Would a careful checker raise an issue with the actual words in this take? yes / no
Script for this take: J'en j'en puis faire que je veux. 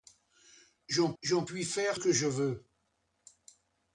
no